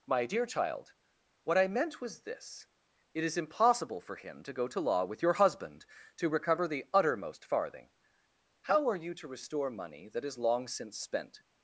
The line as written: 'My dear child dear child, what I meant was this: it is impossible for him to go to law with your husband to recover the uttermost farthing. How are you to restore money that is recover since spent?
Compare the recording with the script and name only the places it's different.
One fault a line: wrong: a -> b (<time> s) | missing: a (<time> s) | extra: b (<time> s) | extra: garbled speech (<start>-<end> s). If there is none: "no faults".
missing: dear child (0.9 s)
wrong: recover -> long (10.4 s)